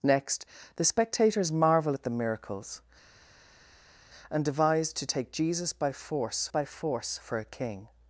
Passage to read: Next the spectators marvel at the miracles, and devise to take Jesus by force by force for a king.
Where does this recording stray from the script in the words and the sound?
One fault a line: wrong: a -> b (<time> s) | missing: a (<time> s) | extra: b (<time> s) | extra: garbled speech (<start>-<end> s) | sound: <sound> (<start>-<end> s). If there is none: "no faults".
no faults